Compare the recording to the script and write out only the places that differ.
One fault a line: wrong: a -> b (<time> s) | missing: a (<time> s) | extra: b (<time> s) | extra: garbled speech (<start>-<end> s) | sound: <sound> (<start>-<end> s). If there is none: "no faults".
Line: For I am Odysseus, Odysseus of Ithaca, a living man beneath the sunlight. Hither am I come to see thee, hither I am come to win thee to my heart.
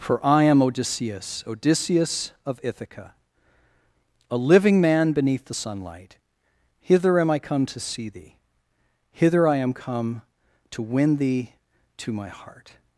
no faults